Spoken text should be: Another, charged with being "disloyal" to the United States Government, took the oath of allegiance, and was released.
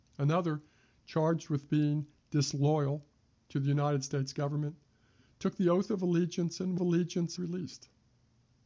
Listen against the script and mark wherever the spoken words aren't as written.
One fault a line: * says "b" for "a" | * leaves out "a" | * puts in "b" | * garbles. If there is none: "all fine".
* says "allegiance" for "was"